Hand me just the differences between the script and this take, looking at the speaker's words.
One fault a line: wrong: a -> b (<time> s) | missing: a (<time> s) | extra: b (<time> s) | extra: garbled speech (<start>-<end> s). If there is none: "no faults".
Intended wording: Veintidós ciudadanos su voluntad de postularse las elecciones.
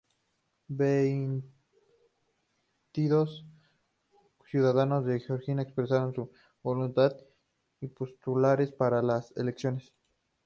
extra: de Georgia expresaron (5.0 s)
extra: para (8.7 s)